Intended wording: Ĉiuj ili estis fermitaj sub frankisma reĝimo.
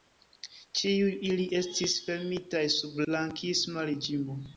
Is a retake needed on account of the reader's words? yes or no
no